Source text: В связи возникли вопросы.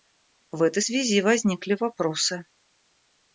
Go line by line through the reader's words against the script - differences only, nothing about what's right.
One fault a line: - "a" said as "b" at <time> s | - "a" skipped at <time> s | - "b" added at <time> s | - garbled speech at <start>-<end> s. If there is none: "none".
- "этой" added at 0.6 s